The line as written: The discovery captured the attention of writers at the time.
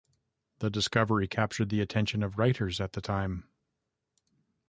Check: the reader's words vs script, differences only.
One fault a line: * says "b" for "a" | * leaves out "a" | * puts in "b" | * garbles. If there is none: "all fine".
all fine